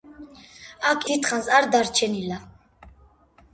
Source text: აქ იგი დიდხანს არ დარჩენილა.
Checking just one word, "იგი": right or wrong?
wrong